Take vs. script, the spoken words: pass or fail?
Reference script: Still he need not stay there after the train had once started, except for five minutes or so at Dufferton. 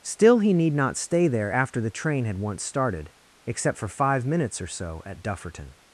pass